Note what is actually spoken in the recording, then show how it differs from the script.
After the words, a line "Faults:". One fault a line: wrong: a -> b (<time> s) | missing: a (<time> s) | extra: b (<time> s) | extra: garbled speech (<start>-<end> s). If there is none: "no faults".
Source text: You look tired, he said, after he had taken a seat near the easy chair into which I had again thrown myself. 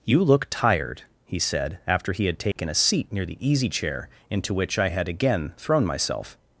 You look tired, he said, after he had taken a seat near the easy chair into which I had again thrown myself.
Faults:
no faults